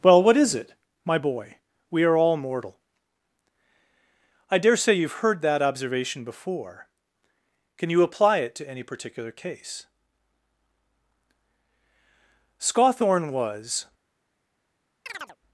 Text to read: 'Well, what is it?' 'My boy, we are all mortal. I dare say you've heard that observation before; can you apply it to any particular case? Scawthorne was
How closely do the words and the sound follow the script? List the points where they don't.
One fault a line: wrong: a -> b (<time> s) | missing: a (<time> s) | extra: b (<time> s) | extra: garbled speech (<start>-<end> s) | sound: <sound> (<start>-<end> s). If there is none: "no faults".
sound: chirp (15.1-15.4 s)